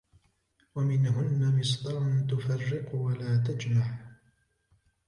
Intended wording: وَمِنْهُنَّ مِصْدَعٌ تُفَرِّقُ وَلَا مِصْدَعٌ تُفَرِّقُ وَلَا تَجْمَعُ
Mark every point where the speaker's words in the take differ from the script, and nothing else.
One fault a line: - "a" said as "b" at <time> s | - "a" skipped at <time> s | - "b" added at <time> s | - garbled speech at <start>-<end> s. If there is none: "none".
- "مِصْدَعٌ تُفَرِّقُ وَلَا" skipped at 3.4 s